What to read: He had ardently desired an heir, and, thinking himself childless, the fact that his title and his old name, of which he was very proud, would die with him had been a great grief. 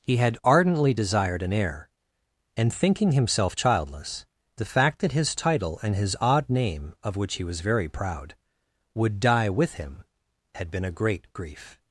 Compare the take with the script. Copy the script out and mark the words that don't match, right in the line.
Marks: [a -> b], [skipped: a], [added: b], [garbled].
He had ardently desired an heir, and, thinking himself childless, the fact that his title and his [old -> odd] name, of which he was very proud, would die with him had been a great grief.